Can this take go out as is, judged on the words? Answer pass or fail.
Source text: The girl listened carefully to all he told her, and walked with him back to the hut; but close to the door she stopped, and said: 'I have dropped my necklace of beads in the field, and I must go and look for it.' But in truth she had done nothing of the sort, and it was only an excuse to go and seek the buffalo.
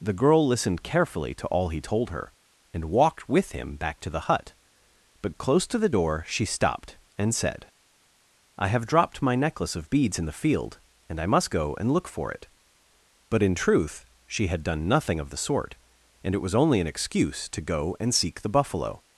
pass